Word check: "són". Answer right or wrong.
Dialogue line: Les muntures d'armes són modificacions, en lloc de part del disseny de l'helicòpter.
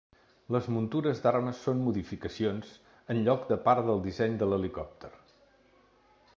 right